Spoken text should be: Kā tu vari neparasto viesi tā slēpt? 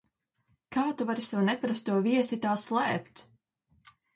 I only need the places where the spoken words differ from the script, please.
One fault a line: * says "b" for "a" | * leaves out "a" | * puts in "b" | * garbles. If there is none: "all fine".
* puts in "savu"